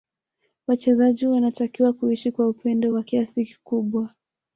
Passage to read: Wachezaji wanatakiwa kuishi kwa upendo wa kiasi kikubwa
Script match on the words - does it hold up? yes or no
yes